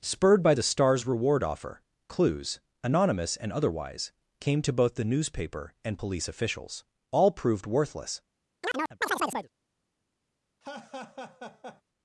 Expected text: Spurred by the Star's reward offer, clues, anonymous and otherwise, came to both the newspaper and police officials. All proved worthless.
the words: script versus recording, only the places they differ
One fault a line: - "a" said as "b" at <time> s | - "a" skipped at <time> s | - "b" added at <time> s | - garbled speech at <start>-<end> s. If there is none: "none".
none